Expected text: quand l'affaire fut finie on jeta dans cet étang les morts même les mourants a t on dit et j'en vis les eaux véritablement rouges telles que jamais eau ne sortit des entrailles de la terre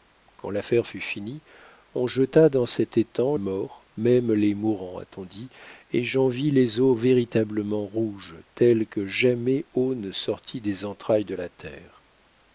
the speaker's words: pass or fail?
fail